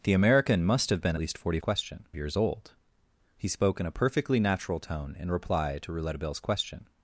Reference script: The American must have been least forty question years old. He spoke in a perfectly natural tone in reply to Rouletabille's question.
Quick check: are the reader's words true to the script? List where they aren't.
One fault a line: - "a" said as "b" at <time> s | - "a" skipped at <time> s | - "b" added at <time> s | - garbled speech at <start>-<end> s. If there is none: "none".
none